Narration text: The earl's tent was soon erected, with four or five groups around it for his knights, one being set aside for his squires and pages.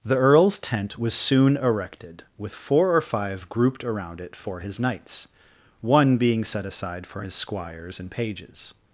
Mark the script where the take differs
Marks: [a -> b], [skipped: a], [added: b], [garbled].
The earl's tent was soon erected, with four or five [groups -> grouped] around it for his knights, one being set aside for his squires and pages.